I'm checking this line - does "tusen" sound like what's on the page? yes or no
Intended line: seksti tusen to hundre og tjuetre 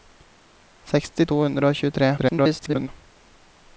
no